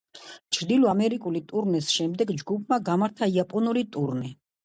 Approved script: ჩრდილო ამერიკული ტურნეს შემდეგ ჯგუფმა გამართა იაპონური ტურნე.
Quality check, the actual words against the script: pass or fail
pass